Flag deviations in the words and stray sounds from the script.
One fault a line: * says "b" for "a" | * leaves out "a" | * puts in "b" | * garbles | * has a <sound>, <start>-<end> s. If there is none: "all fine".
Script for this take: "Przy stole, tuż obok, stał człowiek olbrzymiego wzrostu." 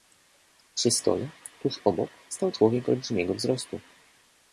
all fine